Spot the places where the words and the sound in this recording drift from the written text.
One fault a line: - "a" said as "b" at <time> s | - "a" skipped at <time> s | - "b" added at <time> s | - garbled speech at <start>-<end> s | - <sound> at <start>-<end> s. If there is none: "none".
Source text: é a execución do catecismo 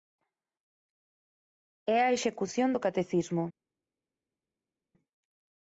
none